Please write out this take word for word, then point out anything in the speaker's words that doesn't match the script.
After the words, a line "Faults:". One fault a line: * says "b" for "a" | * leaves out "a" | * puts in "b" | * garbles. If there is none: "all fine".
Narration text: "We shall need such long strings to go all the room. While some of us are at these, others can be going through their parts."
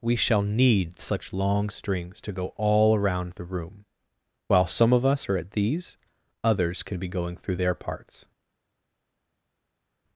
"We shall need such long strings to go all around the room. While some of us are at these, others can be going through their parts."
Faults:
* puts in "around"